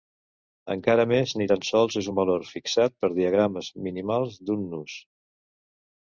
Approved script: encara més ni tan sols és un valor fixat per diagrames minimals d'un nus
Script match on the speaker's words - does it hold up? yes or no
yes